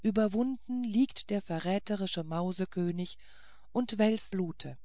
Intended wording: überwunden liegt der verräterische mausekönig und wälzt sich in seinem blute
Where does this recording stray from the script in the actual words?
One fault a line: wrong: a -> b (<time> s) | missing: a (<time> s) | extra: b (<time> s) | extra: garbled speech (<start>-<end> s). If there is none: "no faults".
missing: sich in seinem (4.3 s)